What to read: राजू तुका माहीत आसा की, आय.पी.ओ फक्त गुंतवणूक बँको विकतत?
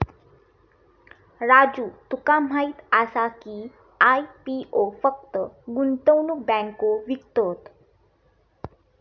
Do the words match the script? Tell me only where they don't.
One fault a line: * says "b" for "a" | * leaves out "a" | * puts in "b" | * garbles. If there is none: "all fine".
all fine